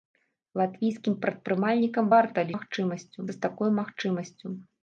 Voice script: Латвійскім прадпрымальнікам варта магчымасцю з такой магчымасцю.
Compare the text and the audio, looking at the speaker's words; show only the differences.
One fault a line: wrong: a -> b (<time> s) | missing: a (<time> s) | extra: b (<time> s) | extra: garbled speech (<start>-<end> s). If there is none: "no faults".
no faults